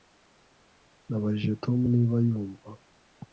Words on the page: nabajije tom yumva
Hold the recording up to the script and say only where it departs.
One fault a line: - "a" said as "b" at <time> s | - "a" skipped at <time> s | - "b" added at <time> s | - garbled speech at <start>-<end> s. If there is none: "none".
- "niba" added at 1.9 s